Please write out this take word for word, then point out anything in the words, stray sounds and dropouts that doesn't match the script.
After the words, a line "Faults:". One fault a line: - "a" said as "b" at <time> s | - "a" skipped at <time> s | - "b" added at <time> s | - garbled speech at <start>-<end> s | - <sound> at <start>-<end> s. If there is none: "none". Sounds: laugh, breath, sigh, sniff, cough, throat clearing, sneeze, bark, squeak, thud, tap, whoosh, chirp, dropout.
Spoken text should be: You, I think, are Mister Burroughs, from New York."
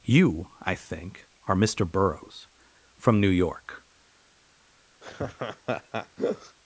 You, I think, are Mister Burroughs, from New York."
Faults:
- laugh at 5.0-6.6 s